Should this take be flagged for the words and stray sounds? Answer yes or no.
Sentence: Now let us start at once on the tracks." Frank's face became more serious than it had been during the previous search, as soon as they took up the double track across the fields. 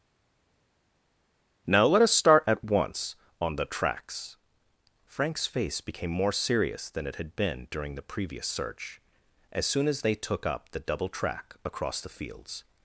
no